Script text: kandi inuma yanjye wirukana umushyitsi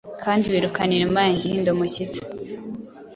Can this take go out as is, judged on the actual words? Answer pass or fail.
fail